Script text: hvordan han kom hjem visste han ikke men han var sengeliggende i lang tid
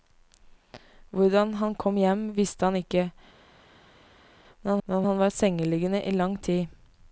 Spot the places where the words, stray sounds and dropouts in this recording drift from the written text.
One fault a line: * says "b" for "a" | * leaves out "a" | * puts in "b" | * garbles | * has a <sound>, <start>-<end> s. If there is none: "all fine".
* puts in "men"